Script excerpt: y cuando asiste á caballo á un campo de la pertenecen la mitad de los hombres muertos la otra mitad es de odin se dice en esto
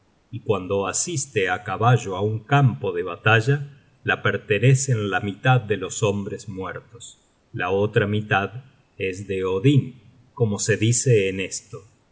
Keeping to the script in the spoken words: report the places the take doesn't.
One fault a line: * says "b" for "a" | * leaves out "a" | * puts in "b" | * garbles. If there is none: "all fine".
* puts in "batalla"
* puts in "como"